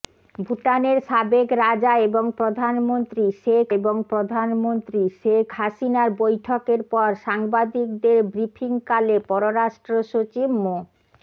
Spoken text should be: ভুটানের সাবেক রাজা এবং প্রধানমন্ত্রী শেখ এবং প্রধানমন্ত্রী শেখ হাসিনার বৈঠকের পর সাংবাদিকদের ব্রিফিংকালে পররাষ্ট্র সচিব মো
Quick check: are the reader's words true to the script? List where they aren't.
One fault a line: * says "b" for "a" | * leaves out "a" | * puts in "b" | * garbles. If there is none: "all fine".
all fine